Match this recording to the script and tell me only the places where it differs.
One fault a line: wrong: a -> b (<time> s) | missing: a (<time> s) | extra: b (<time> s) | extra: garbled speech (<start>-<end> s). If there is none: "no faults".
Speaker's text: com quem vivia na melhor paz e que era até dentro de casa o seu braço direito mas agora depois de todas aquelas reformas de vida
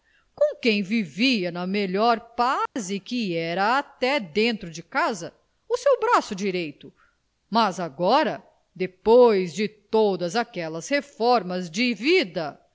no faults